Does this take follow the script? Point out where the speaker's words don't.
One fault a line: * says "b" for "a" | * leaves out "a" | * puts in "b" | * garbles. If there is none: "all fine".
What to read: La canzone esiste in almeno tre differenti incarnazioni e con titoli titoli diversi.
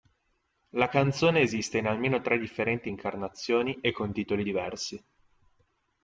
* leaves out "titoli"